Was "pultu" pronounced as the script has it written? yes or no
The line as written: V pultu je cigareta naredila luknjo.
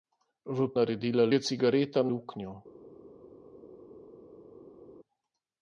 no